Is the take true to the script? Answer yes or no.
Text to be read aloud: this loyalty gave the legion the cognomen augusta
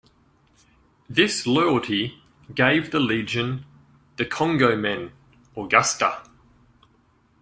yes